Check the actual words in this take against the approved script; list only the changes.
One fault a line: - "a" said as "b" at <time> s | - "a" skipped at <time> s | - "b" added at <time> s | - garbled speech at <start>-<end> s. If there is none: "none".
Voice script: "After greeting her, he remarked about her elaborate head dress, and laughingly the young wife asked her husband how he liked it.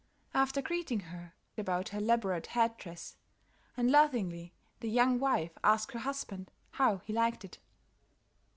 - "he remarked" skipped at 1.3 s